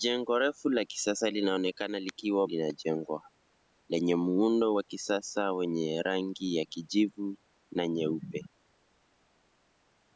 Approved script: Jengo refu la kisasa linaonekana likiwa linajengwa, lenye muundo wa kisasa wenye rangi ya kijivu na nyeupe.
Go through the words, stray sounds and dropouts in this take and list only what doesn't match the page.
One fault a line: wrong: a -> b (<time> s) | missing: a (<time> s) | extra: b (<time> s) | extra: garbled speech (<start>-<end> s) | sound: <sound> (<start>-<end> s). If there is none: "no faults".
no faults